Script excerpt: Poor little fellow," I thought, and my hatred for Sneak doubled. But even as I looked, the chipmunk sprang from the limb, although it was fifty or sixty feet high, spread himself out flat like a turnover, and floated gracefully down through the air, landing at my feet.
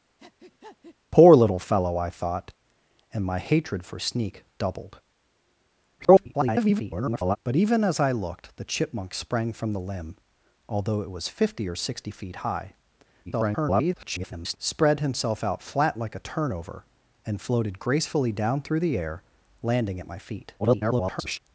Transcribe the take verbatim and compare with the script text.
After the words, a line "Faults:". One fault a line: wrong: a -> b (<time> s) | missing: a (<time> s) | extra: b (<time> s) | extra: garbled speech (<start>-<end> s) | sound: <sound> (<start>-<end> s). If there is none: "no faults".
Poor little fellow," I thought, and my hatred for Sneak doubled. [garbled] But even as I looked, the chipmunk sprang from the limb, although it was fifty or sixty feet high, [garbled] spread himself out flat like a turnover, and floated gracefully down through the air, landing at my feet. [garbled]
Faults:
sound: breath (0.2-1.0 s)
extra: garbled speech (6.0-7.4 s)
extra: garbled speech (13.3-14.6 s)
extra: garbled speech (20.6-21.4 s)